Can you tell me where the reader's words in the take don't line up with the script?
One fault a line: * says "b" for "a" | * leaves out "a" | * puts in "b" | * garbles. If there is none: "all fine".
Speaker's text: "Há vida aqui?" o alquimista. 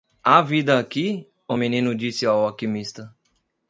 * puts in "menino disse ao"